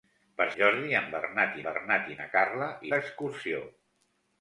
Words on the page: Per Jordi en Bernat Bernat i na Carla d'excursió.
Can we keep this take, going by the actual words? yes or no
yes